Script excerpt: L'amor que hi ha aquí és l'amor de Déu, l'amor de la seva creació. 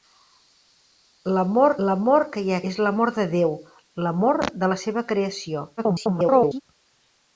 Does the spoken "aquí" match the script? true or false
false